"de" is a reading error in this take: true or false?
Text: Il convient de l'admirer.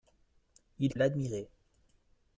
true